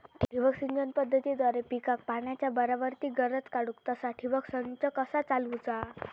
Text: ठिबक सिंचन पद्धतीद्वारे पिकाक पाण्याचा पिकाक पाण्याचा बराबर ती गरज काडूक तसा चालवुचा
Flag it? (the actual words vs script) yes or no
yes